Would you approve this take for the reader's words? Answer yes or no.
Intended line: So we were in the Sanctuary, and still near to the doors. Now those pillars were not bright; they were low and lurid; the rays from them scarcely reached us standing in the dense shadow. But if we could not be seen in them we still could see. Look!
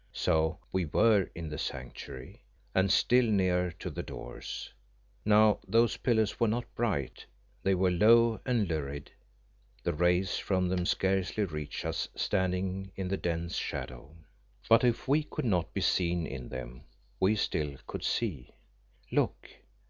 yes